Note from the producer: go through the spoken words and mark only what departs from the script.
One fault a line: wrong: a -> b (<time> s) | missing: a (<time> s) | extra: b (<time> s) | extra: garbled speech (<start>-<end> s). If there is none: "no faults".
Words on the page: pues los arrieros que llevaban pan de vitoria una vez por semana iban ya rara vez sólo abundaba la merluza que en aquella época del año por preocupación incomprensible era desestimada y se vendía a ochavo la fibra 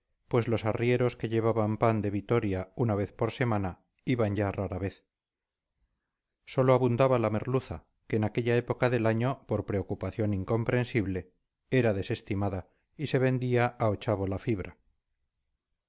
no faults